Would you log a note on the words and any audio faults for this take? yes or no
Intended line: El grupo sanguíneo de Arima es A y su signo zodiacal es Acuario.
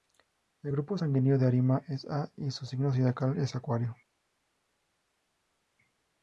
no